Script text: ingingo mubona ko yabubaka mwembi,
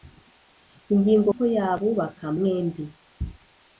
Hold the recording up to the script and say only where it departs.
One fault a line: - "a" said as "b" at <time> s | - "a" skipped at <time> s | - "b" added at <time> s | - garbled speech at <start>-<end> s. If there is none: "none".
- "mubona" skipped at 1.3 s